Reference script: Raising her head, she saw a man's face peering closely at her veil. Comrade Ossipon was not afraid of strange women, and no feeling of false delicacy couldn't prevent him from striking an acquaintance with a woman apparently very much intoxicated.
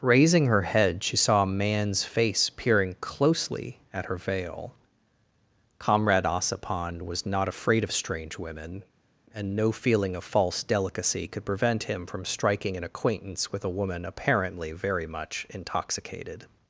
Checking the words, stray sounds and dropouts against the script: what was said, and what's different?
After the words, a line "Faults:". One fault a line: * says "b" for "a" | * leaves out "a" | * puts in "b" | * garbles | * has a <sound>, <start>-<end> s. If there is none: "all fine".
Raising her head, she saw a man's face peering closely at her veil. Comrade Ossipon was not afraid of strange women, and no feeling of false delicacy could prevent him from striking an acquaintance with a woman apparently very much intoxicated.
Faults:
* says "could" for "couldn't"